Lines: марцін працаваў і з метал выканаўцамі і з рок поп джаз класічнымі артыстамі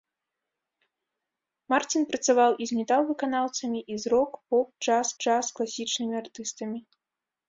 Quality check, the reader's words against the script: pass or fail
fail